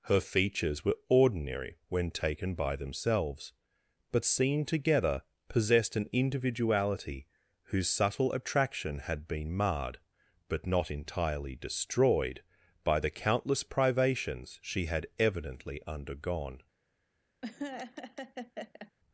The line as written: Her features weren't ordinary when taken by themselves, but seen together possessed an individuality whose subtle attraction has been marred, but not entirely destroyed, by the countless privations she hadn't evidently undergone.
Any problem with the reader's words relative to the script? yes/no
yes